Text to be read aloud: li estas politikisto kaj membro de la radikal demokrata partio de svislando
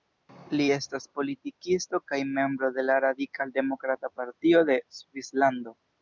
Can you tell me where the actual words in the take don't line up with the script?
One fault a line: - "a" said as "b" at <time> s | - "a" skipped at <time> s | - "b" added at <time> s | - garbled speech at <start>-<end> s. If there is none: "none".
none